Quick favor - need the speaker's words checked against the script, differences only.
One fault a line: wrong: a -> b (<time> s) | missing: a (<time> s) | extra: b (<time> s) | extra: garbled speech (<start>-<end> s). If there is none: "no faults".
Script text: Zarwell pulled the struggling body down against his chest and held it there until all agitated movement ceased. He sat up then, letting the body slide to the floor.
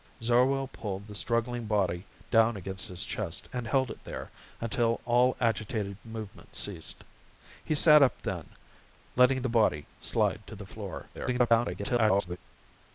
extra: garbled speech (11.1-12.4 s)